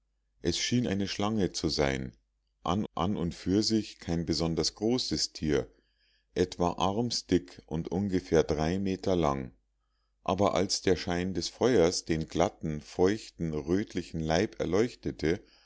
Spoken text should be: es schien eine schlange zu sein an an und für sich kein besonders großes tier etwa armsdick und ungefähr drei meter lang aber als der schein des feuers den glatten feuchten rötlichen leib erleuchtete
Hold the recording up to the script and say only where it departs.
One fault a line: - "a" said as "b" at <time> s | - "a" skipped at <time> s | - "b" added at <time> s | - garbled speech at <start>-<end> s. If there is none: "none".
none